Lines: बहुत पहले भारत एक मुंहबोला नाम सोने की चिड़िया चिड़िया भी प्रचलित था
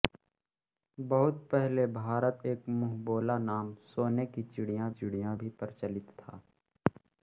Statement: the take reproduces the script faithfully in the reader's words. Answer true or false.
true